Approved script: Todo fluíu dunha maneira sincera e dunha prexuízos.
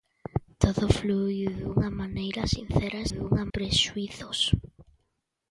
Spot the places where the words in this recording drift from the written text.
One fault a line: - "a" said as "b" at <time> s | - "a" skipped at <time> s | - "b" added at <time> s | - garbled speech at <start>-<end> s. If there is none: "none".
none